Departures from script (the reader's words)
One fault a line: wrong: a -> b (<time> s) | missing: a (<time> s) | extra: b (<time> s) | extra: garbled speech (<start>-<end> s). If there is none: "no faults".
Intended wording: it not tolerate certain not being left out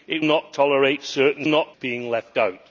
no faults